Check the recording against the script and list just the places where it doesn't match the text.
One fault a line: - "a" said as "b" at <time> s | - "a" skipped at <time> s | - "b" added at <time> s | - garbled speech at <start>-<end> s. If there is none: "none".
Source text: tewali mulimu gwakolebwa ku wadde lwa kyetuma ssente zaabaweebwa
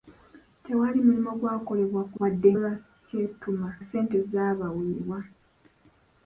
none